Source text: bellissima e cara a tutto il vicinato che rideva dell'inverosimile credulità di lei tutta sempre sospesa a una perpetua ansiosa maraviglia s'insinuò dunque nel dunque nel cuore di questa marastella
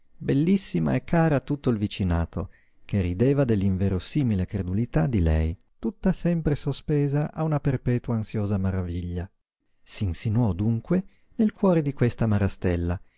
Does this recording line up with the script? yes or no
no